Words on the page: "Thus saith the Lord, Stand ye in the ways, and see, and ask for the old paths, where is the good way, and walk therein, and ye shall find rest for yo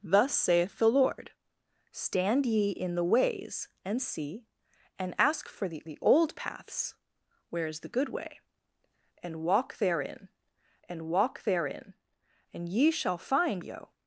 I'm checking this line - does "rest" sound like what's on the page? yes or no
no